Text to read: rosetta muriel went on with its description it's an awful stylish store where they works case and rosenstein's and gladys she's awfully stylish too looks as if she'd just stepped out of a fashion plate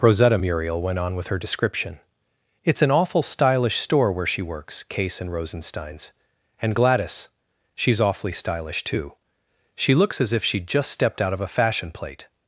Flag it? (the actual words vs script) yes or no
yes